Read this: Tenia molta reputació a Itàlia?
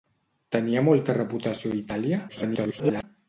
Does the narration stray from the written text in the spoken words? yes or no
yes